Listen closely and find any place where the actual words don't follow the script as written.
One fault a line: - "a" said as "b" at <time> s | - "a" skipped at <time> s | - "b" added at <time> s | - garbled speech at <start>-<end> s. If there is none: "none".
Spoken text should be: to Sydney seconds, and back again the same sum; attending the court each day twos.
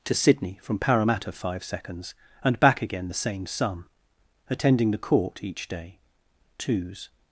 - "from Parramatta five" added at 0.6 s